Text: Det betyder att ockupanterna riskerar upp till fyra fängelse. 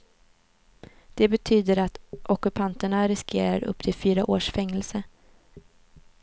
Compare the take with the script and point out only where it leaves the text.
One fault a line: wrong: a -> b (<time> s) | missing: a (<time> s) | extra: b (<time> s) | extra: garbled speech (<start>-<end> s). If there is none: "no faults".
extra: års (4.3 s)